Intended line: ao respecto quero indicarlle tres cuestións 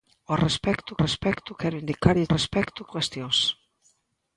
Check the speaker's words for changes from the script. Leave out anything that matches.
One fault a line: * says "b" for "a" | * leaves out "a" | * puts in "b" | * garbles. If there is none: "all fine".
* puts in "respecto"
* says "respecto" for "tres"